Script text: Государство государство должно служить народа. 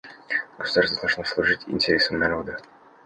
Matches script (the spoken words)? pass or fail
fail